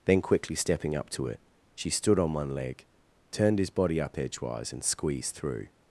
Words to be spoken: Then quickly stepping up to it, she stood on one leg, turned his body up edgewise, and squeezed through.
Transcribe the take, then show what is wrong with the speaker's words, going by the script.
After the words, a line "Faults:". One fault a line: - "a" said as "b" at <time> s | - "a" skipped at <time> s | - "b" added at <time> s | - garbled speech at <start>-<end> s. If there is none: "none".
Then quickly stepping up to it, she stood on one leg, turned his body up edgewise, and squeezed through.
Faults:
none